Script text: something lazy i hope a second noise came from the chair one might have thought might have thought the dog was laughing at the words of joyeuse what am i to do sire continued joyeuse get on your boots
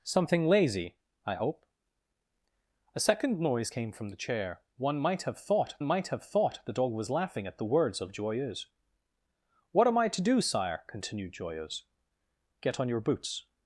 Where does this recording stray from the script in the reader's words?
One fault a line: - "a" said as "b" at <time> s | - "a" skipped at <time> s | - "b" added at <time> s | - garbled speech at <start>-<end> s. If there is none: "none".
none